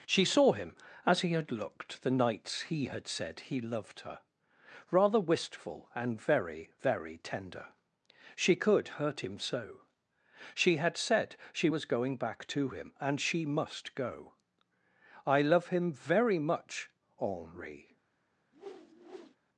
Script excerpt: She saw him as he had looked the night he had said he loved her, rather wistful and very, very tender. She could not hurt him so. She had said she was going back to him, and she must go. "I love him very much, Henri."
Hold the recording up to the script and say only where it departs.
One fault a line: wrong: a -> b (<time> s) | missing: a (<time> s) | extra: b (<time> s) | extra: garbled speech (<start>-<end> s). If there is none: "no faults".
wrong: night -> nights (2.1 s)
missing: not (8.9 s)